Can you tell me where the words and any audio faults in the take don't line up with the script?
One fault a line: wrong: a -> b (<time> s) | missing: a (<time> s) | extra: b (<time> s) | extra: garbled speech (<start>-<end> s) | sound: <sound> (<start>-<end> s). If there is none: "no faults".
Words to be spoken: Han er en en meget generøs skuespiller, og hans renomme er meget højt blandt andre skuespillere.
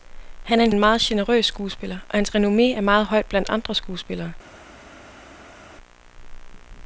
no faults